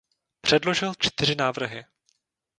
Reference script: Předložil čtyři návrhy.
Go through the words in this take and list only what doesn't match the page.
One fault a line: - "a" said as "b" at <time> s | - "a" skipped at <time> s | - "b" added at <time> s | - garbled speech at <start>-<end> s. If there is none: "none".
none